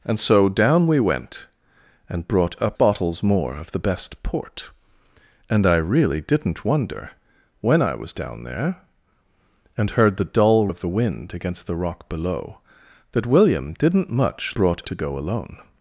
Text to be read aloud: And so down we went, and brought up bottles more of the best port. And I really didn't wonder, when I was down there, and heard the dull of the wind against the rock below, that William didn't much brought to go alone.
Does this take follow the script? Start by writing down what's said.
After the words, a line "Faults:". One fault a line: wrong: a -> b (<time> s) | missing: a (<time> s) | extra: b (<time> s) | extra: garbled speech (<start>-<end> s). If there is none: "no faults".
And so down we went, and brought up bottles more of the best port. And I really didn't wonder, when I was down there, and heard the dull of the wind against the rock below, that William didn't much brought to go alone.
Faults:
no faults